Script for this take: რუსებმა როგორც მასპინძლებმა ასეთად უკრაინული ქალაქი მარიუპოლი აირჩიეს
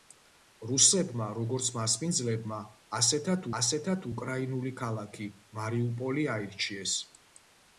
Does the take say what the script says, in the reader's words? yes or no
no